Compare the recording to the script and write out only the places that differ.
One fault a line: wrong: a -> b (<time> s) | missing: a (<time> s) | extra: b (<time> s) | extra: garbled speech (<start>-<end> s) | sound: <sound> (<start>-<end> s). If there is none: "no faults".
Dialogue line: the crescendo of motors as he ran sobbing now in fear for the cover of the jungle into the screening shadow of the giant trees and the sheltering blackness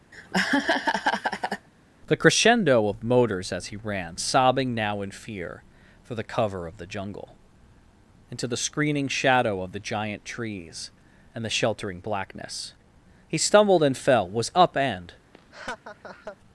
sound: laugh (0.1-1.7 s)
extra: he stumbled and fell was up and (13.3 s)
sound: laugh (15.3-16.4 s)